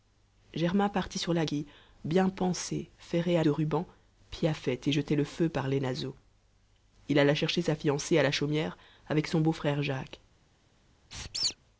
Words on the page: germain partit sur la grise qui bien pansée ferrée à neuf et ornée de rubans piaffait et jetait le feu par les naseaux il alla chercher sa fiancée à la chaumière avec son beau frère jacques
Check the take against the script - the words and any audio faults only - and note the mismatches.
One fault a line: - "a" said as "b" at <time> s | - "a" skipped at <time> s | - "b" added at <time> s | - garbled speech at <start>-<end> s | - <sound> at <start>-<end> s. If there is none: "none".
- "grise" skipped at 1.4 s
- "neuf et ornée" skipped at 3.4 s
- squeak at 11.1-11.6 s